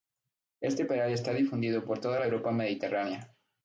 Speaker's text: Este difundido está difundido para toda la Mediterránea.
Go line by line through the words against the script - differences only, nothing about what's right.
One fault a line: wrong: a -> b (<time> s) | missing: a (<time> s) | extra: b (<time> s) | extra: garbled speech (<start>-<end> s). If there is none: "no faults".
wrong: difundido -> peral (0.8 s)
wrong: para -> por (1.8 s)
extra: Europa (2.3 s)